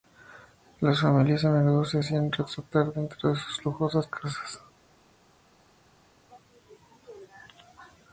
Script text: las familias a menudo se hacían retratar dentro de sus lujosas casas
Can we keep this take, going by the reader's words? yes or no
yes